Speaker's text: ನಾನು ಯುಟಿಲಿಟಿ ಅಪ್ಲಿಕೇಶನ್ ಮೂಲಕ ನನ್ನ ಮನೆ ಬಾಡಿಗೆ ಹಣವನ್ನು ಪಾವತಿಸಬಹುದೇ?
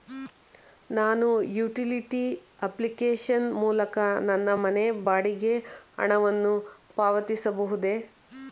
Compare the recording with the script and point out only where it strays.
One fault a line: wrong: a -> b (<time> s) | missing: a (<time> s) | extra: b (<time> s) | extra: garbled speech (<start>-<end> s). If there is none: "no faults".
no faults